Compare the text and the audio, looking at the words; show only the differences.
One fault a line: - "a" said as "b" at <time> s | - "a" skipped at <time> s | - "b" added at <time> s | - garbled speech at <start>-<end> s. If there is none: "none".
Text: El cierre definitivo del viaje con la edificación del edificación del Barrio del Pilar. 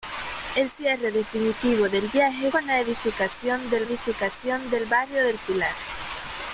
none